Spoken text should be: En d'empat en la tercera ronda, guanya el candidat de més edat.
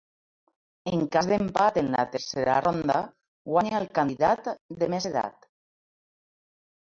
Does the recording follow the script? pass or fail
fail